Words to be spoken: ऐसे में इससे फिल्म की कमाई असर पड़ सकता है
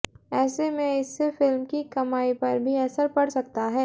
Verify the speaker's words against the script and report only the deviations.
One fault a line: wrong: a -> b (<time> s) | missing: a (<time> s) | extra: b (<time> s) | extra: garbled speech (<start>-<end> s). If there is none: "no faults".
extra: पर भी (2.3 s)